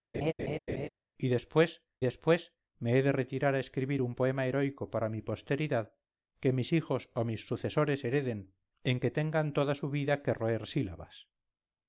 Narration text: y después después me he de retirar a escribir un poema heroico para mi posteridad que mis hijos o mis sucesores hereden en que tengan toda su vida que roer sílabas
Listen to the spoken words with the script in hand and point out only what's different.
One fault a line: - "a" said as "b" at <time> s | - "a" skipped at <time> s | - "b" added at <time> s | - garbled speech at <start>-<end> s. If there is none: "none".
none